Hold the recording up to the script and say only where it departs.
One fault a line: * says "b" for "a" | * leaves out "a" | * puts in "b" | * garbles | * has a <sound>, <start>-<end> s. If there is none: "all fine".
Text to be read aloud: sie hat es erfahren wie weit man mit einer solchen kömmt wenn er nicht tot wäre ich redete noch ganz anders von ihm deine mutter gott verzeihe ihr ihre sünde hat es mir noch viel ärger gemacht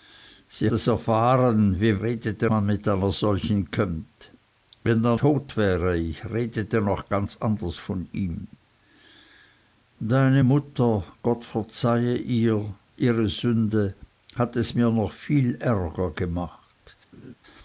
* leaves out "hat"
* says "redete" for "weit"
* leaves out "nicht"
* has a laugh, 17.1-17.3 s